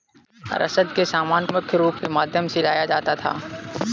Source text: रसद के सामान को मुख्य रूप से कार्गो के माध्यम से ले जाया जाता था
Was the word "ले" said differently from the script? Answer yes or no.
yes